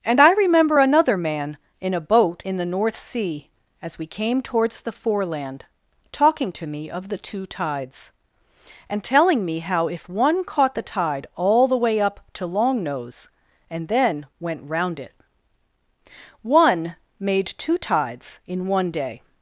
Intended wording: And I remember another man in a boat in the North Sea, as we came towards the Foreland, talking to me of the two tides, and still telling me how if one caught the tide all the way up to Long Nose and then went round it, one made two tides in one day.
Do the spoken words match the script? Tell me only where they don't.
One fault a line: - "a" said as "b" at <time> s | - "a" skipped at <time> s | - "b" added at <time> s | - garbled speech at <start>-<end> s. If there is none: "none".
- "still" skipped at 9.0 s